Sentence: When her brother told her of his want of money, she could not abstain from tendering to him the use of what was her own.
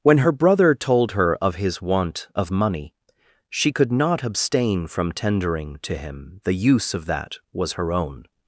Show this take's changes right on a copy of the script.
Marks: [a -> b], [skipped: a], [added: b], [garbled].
When her brother told her of his want of money, she could not abstain from tendering to him the use of [what -> that] was her own.